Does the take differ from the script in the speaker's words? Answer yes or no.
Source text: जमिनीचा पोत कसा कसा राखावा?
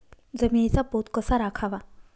yes